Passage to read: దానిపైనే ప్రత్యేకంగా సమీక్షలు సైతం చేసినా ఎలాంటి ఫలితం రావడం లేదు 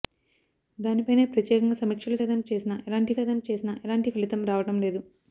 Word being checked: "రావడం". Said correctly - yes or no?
yes